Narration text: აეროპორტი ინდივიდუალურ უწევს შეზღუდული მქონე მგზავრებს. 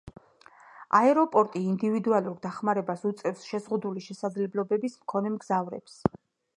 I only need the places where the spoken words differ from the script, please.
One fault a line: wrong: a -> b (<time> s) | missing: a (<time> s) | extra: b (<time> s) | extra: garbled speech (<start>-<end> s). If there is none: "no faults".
extra: დახმარებას (2.5 s)
extra: შესაძლებლობების (4.1 s)